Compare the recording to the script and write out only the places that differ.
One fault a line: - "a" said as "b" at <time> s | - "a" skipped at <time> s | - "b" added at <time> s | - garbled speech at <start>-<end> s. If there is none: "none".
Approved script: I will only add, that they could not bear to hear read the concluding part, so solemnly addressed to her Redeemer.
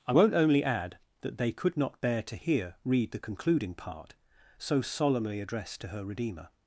- "will" said as "won't" at 0.1 s